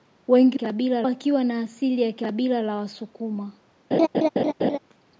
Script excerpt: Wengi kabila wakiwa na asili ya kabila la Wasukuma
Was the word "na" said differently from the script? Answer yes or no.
no